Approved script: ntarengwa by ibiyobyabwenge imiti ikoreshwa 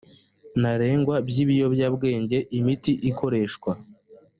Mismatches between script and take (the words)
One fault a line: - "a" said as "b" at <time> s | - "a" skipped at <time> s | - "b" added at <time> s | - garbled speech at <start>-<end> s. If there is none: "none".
none